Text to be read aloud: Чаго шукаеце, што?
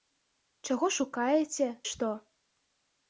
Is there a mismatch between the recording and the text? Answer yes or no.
no